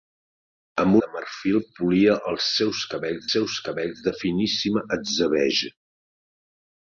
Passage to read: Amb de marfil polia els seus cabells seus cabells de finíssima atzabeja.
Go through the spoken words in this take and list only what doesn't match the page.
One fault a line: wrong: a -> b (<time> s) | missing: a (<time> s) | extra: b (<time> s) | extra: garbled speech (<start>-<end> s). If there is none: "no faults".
no faults